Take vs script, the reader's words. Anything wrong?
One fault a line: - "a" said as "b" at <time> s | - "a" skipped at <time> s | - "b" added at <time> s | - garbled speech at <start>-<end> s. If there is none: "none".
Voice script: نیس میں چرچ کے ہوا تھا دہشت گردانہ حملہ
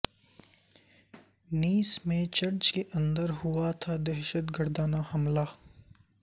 - "اندر" added at 2.9 s